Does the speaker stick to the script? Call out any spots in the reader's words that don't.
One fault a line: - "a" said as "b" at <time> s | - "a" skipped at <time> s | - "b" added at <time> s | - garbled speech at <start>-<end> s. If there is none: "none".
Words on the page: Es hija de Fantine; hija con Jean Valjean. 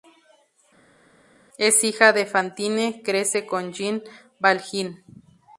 - "hija" said as "crece" at 3.0 s